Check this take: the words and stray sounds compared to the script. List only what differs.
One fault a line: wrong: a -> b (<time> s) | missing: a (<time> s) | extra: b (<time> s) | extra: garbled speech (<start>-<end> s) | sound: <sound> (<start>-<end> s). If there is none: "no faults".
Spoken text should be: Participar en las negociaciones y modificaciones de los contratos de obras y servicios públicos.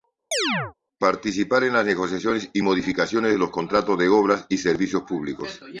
sound: chirp (0.3-0.7 s)